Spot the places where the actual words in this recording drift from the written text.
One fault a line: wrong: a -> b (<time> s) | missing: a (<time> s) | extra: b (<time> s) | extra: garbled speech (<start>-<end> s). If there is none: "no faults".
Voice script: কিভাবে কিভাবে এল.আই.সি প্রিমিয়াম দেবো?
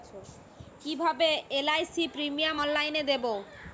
missing: কিভাবে (1.3 s)
extra: অনলাইনে (2.6 s)